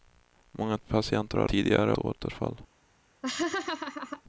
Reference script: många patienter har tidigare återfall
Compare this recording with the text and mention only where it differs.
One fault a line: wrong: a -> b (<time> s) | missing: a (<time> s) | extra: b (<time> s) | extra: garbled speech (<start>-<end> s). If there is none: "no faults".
no faults